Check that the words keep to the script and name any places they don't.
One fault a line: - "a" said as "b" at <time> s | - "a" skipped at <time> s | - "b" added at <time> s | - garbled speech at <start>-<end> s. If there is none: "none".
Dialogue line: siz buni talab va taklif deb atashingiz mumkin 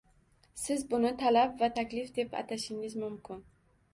none